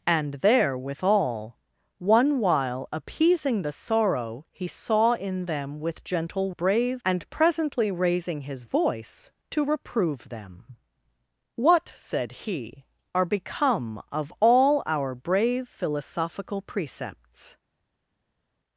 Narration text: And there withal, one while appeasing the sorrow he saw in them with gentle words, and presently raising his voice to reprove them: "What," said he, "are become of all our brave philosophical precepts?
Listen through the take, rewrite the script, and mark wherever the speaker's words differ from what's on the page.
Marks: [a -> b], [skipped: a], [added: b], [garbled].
And there withal, one while appeasing the sorrow he saw in them with gentle [words, -> brave] and presently raising his voice to reprove them: "What," said he, "are become of all our brave philosophical precepts?